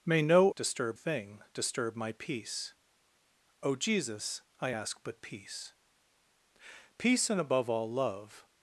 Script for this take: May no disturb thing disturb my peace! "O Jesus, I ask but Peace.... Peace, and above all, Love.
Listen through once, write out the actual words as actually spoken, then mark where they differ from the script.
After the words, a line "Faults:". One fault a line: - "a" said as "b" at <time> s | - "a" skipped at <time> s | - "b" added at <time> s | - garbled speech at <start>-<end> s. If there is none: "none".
May no disturb thing disturb my peace! "O Jesus, I ask but Peace.... Peace, and above all, Love.
Faults:
none